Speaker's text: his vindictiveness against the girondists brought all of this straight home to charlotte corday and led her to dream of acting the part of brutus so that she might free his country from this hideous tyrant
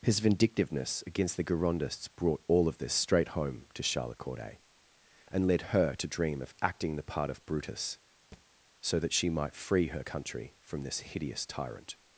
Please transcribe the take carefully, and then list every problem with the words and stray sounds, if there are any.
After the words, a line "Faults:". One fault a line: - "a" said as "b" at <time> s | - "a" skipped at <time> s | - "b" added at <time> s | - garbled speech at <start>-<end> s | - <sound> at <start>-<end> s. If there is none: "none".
his vindictiveness against the girondists brought all of this straight home to charlotte corday and led her to dream of acting the part of brutus so that she might free her country from this hideous tyrant
Faults:
- thud at 8.3-8.5 s
- "his" said as "her" at 9.9 s